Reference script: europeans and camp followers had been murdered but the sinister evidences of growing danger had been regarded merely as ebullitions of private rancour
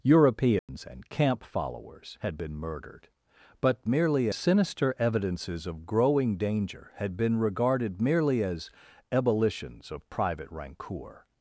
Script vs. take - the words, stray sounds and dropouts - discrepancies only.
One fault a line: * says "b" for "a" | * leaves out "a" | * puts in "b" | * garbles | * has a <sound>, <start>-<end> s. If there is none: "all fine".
* has a dropout, 0.6-0.7 s
* says "merely" for "the"